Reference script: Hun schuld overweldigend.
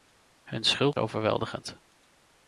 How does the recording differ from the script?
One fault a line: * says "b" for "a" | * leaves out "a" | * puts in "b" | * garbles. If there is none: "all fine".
all fine